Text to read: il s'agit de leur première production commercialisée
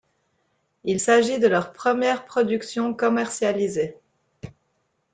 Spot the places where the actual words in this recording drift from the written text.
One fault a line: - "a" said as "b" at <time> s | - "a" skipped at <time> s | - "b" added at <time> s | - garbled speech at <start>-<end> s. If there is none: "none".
none